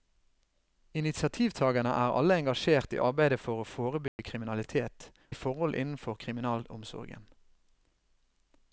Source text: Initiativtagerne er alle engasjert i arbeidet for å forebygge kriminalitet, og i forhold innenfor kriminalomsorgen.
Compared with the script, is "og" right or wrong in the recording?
wrong